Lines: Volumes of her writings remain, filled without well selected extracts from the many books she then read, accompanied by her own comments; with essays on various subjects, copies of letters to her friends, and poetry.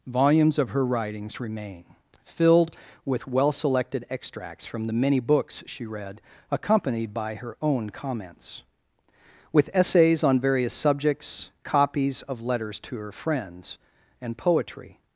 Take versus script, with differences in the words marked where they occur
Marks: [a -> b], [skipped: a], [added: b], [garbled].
Volumes of her writings remain, filled [without -> with] well selected extracts from the many books she [skipped: then] read, accompanied by her own comments; with essays on various subjects, copies of letters to her friends, and poetry.